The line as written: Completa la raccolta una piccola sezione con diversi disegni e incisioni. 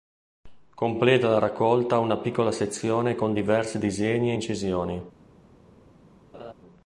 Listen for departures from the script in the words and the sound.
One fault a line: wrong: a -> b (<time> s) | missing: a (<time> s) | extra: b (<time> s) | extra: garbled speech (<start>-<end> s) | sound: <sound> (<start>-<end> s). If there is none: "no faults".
sound: laugh (6.3-6.5 s)